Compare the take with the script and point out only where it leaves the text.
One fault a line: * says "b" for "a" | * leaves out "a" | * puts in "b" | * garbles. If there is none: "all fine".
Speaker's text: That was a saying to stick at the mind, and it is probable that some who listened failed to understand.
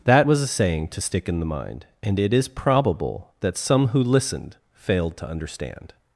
* says "in" for "at"